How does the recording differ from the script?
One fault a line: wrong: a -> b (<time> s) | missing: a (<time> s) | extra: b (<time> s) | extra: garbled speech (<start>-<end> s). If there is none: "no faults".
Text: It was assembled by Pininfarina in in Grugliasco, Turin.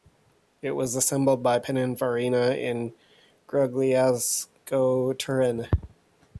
missing: in (2.9 s)